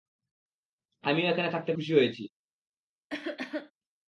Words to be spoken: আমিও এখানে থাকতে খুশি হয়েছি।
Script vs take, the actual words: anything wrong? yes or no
no